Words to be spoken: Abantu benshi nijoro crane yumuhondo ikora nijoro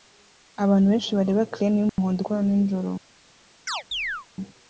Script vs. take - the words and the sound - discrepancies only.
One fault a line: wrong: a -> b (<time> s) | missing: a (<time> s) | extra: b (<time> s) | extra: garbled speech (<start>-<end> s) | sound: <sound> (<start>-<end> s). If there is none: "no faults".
wrong: nijoro -> bareba (1.2 s)
sound: dropout (1.9-2.0 s)
sound: chirp (3.7-4.3 s)